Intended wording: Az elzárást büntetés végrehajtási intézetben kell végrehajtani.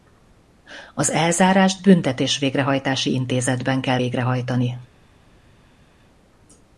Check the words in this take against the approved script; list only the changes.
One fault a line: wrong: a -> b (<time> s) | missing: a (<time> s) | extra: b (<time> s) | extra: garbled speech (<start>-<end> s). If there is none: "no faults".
no faults